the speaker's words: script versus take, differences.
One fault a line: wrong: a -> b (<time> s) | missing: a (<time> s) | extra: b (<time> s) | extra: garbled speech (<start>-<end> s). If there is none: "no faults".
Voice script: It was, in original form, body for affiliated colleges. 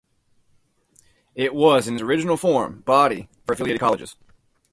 no faults